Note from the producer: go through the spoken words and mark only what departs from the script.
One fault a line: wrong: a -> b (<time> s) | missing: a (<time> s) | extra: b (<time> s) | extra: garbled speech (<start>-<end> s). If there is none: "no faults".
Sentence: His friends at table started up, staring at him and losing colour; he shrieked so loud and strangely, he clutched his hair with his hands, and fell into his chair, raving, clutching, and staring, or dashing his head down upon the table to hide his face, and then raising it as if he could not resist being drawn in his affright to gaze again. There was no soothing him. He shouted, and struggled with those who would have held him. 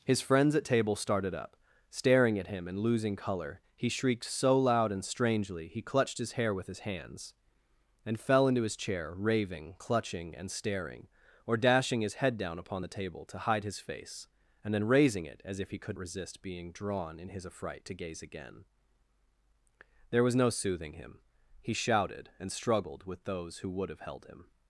missing: not (16.0 s)